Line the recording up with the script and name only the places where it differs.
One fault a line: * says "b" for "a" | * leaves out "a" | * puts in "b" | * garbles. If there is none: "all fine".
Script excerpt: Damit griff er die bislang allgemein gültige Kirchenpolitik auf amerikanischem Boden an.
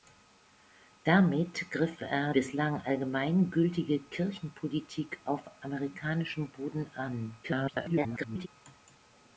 * leaves out "die"
* garbles